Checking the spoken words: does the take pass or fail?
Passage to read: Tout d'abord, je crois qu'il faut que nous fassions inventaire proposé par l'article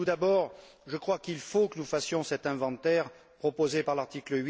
fail